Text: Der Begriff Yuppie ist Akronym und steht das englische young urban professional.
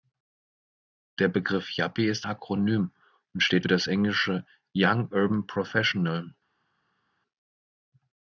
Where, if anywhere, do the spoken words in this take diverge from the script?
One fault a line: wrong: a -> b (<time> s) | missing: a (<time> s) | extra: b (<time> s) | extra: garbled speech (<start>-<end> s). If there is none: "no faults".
no faults